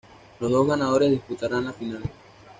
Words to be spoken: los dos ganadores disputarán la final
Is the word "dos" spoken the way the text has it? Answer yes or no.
yes